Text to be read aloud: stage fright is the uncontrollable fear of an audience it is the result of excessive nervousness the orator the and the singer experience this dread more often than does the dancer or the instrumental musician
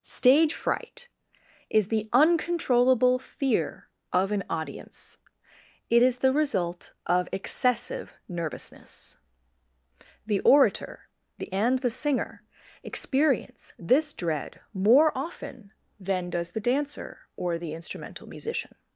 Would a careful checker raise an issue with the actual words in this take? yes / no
no